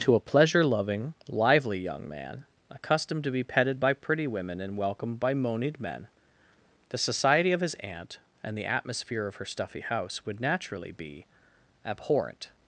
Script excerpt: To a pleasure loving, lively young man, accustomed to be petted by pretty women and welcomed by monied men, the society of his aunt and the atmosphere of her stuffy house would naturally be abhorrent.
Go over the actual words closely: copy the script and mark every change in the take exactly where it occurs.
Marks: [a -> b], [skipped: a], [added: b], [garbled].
To a pleasure loving, lively young man, accustomed to be petted by pretty women and welcomed by monied men, the society of his aunt and the atmosphere of her stuffy house would naturally be abhorrent.